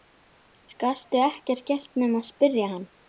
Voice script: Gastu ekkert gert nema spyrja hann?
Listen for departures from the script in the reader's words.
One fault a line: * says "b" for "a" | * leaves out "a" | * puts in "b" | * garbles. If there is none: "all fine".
all fine